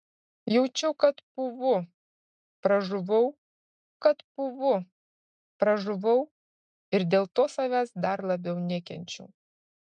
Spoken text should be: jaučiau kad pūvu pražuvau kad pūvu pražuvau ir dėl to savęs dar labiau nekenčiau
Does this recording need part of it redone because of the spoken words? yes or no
no